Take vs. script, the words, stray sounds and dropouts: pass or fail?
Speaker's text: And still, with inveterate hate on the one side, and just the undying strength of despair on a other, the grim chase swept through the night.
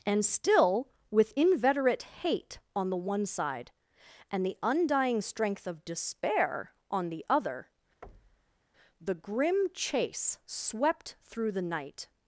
fail